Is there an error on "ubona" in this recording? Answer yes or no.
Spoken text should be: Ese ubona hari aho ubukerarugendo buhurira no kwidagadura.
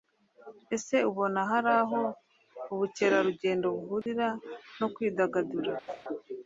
no